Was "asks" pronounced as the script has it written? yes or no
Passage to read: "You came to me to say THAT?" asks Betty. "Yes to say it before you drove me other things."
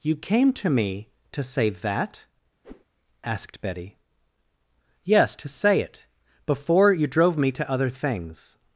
no